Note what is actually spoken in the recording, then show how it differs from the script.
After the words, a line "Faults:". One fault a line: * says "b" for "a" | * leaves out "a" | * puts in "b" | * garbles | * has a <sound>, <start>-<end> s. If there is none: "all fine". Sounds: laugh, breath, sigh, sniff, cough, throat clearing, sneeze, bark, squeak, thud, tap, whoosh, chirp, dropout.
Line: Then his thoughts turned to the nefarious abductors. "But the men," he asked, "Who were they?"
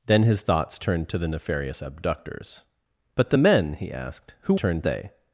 Then his thoughts turned to the nefarious abductors. "But the men," he asked, "Who turned they?"
Faults:
* says "turned" for "were"